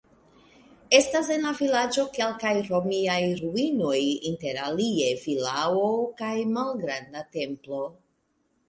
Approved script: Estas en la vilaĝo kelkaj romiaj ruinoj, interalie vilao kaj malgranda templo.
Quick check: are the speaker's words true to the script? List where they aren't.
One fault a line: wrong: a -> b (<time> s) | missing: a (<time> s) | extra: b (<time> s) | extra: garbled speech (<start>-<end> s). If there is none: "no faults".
no faults